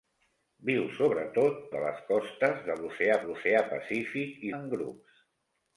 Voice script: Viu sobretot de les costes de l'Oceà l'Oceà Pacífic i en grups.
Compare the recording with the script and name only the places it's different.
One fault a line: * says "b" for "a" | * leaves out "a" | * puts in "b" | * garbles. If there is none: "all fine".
all fine